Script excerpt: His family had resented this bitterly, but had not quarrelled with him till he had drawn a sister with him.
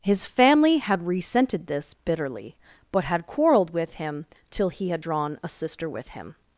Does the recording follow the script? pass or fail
fail